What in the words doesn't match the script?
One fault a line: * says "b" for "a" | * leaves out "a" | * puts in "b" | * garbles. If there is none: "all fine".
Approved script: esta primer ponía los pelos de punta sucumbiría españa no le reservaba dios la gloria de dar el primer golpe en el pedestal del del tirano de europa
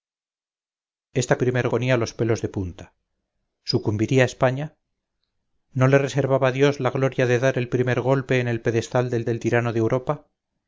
all fine